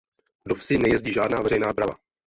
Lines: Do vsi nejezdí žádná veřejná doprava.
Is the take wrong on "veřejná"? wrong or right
right